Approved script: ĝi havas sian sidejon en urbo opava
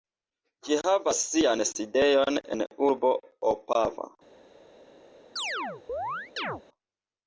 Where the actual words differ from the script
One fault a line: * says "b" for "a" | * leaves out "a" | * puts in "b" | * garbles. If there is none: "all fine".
all fine